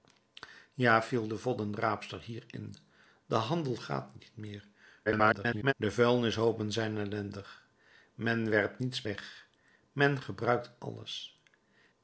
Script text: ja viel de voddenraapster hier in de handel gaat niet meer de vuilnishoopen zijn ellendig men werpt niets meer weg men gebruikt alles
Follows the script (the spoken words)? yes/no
no